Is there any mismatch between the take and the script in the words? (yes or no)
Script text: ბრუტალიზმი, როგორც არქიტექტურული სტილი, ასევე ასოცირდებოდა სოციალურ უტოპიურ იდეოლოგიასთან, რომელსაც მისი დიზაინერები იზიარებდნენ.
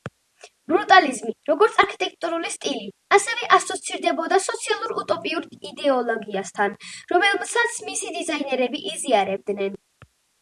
no